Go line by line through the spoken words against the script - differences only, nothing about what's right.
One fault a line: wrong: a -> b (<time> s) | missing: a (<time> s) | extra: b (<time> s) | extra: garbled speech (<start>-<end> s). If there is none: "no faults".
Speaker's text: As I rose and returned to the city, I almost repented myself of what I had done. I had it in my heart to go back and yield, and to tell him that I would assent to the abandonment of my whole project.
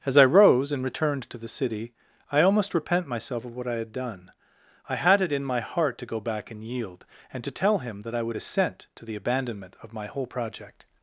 wrong: repented -> repent (2.7 s)